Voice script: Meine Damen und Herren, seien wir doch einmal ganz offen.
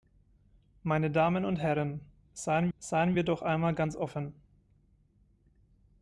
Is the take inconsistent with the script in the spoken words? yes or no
yes